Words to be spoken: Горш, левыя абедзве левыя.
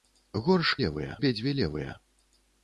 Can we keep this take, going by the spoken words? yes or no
yes